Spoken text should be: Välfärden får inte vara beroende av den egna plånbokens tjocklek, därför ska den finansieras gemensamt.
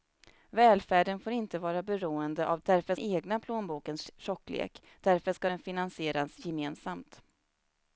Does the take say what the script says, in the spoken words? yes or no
no